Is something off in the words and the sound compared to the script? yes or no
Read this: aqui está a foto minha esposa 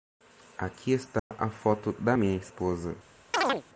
yes